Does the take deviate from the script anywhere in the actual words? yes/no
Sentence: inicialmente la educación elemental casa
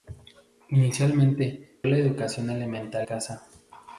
no